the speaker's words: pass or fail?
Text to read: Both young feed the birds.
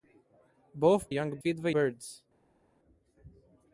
pass